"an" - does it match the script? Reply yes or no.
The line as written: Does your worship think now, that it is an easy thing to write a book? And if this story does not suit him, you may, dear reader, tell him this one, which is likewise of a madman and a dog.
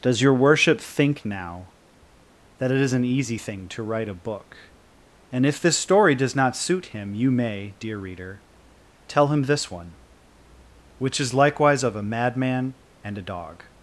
yes